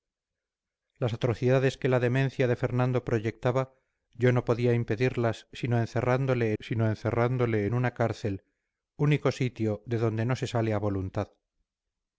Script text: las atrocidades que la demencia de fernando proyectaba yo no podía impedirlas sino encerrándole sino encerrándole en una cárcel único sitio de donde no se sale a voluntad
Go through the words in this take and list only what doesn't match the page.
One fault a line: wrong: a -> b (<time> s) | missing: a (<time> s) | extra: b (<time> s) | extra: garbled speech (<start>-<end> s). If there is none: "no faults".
no faults